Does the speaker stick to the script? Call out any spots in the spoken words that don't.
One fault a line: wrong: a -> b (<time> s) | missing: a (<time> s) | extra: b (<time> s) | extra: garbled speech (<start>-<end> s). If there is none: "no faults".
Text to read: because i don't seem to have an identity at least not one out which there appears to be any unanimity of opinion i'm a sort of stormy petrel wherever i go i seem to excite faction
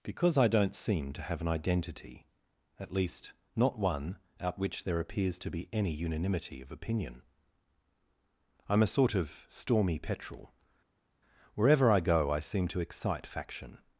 no faults